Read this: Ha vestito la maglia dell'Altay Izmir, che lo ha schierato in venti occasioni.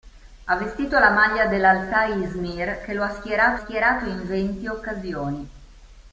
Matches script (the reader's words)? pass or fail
fail